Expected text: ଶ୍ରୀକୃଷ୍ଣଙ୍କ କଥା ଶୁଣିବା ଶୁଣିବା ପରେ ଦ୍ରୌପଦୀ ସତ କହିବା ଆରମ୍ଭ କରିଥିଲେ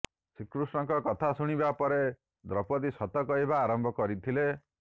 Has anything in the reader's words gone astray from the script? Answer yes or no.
yes